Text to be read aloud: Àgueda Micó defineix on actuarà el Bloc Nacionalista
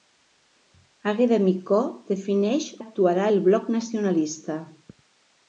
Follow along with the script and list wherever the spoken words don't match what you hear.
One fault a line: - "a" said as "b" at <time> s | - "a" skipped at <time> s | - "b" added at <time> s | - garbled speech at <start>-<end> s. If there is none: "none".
- "on" skipped at 2.7 s